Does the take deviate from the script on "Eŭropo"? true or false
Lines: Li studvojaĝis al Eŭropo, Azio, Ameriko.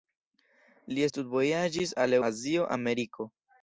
true